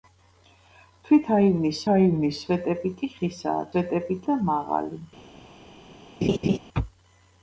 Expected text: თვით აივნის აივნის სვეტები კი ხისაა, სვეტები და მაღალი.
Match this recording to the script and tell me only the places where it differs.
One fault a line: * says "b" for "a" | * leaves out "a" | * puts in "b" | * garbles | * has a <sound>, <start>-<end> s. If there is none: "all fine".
* has a laugh, 6.2-6.6 s